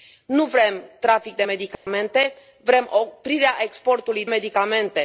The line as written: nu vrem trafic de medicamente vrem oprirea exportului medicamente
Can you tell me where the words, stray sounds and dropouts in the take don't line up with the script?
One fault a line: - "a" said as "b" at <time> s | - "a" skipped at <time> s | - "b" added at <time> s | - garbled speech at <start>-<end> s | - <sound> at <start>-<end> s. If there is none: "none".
- dropout at 1.7-1.9 s